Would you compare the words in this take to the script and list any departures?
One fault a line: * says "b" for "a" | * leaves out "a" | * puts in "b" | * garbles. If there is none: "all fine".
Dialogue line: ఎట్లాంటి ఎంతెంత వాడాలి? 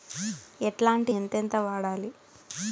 all fine